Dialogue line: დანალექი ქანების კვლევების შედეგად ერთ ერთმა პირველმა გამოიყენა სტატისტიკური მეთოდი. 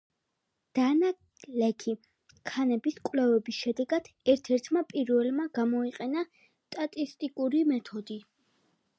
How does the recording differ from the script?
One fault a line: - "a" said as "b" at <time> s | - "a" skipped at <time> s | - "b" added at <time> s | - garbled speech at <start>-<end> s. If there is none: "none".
none